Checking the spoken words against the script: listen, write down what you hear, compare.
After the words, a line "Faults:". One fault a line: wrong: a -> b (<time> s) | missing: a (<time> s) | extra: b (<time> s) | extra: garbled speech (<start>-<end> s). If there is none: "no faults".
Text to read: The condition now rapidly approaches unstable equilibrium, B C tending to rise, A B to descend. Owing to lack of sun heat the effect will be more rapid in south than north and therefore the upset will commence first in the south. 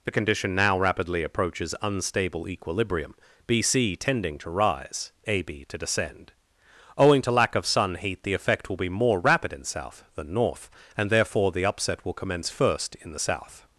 The condition now rapidly approaches unstable equilibrium, B C tending to rise, A B to descend. Owing to lack of sun heat the effect will be more rapid in south than north and therefore the upset will commence first in the south.
Faults:
no faults